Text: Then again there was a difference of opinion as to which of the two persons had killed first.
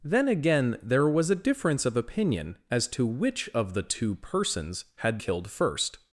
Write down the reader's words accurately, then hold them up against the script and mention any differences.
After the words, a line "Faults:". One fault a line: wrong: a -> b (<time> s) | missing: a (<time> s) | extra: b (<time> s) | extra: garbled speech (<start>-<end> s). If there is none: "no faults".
Then again there was a difference of opinion as to which of the two persons had killed first.
Faults:
no faults